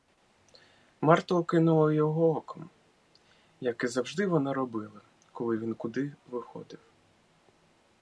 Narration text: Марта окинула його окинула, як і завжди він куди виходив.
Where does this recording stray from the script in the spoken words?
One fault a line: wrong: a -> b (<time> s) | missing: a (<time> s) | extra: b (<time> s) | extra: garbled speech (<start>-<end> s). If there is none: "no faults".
wrong: окинула -> оком (2.4 s)
extra: вона робила коли (4.3 s)